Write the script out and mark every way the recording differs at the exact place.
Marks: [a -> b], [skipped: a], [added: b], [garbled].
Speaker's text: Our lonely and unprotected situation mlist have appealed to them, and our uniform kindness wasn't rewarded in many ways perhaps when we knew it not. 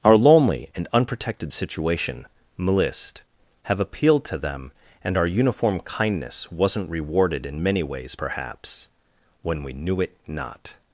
Our lonely and unprotected situation mlist have appealed to them, and our uniform kindness wasn't rewarded in many ways perhaps when we knew it not.